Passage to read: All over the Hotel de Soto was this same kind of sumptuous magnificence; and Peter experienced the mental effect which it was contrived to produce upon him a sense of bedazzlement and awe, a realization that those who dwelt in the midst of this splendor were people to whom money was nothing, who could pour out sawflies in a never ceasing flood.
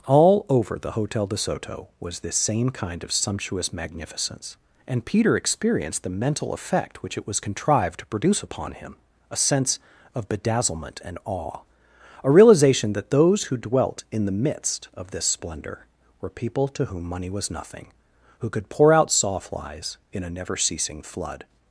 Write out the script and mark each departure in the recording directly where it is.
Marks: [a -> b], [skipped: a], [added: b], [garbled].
All over the Hotel de Soto was this same kind of sumptuous magnificence; and Peter experienced the mental effect which it was contrived to produce upon him a sense of bedazzlement and awe, a realization that those who dwelt in the midst of this splendor were people to whom money was nothing, who could pour out sawflies in a never ceasing flood.